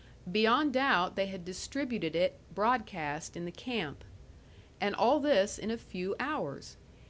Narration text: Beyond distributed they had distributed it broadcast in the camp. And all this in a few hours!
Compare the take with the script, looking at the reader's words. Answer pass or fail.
fail